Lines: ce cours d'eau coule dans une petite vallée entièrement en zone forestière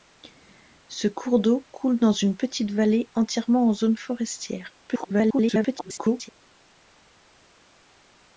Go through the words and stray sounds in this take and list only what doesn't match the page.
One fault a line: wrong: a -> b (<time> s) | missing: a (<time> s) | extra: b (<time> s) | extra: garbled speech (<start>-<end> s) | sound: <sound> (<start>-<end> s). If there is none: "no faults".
extra: garbled speech (4.9-6.3 s)